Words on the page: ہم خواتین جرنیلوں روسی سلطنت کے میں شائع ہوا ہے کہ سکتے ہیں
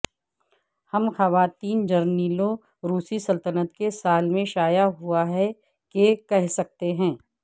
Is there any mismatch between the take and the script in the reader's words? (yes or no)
yes